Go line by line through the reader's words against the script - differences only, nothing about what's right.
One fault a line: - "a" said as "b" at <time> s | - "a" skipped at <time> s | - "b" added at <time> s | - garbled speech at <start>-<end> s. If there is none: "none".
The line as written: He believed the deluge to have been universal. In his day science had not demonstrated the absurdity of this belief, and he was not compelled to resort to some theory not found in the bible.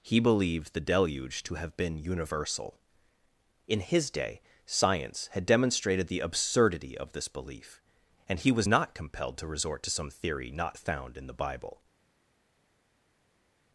- "not" skipped at 5.5 s